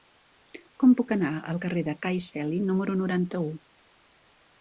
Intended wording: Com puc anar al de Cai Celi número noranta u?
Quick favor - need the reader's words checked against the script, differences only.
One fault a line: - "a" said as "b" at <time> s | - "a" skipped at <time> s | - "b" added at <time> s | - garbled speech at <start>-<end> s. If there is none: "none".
- "carrer" added at 1.6 s